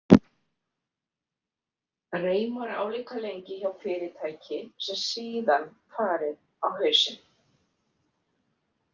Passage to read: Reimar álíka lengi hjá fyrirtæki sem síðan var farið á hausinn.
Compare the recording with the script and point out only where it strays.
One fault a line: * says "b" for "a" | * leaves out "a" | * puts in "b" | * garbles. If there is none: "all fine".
* leaves out "var"